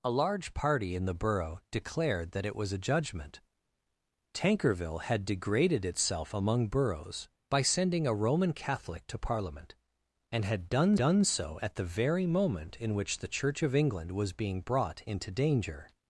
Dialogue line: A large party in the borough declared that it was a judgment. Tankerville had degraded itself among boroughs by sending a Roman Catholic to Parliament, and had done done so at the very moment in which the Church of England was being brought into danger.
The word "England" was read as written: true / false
true